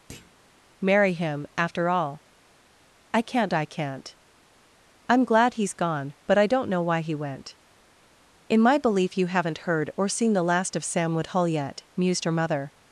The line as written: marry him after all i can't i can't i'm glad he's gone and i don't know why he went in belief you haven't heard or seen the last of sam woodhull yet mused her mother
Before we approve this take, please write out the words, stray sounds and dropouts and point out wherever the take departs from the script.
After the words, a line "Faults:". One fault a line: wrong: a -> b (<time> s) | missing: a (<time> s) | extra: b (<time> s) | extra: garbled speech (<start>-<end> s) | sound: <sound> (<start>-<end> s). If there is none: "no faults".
marry him after all i can't i can't i'm glad he's gone but i don't know why he went in my belief you haven't heard or seen the last of sam woodhull yet mused her mother
Faults:
sound: thud (0.1-0.4 s)
wrong: and -> but (6.3 s)
extra: my (8.6 s)